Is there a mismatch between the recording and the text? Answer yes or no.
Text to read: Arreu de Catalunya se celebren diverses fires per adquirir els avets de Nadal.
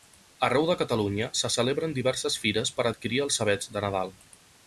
no